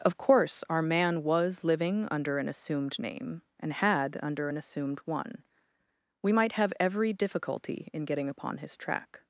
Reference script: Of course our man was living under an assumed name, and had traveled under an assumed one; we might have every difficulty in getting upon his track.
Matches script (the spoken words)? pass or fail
fail